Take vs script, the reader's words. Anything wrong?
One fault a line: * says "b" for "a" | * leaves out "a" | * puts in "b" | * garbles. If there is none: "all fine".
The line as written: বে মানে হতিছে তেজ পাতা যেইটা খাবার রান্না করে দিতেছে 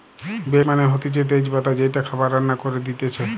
all fine